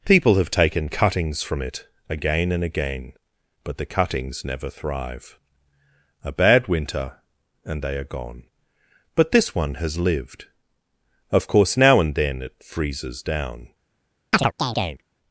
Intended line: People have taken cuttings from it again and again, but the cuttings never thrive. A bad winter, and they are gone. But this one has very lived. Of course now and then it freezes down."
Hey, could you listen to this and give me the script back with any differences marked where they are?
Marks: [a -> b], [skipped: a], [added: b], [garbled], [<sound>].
People have taken cuttings from it again and again, but the cuttings never thrive. A bad winter, and they are gone. But this one has [skipped: very] lived. Of course now and then it freezes down." [chirp]